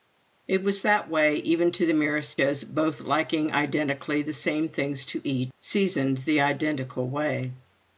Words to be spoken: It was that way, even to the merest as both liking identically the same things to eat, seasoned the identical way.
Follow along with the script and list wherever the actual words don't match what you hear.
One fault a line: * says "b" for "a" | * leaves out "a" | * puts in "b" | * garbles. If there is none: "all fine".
all fine